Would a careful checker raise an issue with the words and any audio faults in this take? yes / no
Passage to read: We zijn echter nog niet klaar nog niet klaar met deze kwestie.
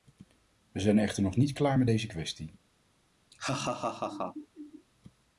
yes